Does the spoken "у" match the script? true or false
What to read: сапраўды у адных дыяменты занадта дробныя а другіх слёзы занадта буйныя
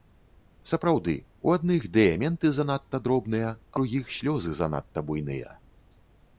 true